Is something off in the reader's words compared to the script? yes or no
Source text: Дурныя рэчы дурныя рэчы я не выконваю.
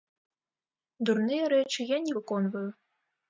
yes